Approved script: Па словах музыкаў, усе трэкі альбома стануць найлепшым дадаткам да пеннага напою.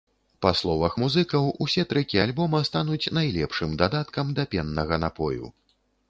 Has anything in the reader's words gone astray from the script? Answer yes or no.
no